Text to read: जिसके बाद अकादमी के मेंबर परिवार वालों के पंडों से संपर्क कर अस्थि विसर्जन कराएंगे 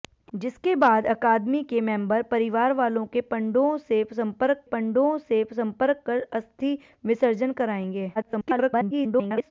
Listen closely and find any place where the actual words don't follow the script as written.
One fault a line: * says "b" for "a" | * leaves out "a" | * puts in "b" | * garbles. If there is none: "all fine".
* puts in "पंडों से संपर्क"
* garbles